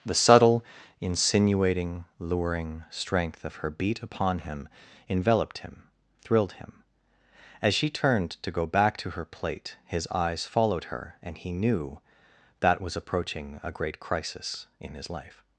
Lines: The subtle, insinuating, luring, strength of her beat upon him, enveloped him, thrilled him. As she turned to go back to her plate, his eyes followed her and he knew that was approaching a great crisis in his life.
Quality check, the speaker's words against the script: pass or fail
pass